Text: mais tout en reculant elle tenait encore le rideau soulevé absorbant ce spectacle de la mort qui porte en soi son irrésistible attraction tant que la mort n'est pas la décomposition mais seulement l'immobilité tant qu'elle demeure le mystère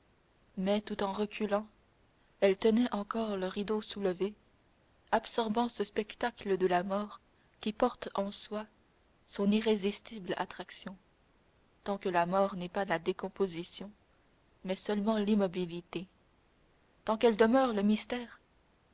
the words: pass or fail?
pass